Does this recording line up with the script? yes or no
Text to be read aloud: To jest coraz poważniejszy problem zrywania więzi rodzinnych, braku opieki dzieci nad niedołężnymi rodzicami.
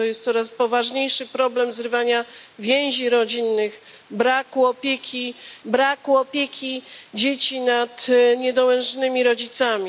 no